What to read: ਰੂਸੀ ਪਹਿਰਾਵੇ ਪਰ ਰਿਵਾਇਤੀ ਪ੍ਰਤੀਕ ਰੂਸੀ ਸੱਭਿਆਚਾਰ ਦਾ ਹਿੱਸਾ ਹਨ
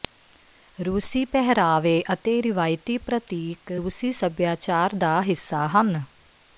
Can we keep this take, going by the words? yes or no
no